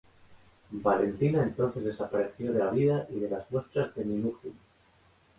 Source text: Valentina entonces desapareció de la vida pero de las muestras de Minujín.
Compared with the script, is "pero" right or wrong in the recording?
wrong